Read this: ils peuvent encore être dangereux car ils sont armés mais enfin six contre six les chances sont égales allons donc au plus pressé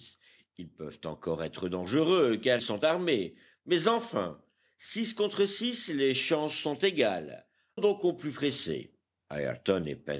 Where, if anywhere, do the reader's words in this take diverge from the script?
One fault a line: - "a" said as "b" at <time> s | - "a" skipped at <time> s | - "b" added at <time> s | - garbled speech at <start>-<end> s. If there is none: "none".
- "ils" skipped at 2.6 s
- "allons" skipped at 7.5 s